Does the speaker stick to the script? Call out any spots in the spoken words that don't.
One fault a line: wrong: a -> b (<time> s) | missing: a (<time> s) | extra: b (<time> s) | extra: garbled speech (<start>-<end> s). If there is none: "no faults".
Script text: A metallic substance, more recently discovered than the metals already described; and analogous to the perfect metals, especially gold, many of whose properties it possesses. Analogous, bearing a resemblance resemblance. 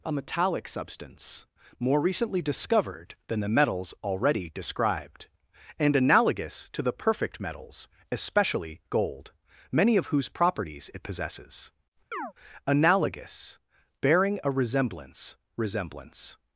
no faults